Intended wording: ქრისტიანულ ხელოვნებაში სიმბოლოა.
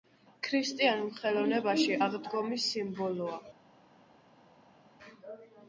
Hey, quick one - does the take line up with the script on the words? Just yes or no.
no